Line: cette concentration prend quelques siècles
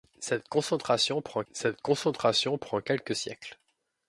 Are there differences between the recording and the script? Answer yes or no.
yes